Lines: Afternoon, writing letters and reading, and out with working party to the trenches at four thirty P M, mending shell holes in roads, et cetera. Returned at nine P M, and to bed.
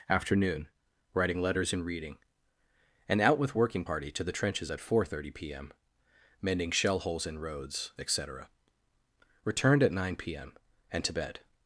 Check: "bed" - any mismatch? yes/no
no